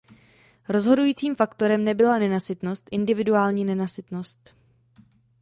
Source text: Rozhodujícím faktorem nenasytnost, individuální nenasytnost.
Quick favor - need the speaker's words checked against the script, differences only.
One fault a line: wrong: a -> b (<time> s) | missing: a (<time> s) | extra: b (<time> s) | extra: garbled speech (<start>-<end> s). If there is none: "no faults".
extra: nebyla (1.8 s)